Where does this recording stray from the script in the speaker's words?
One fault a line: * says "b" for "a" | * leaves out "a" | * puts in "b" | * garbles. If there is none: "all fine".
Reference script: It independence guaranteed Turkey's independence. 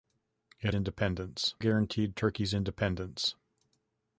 all fine